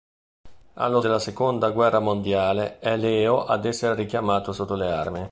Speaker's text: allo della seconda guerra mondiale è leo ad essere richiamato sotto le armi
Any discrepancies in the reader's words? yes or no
no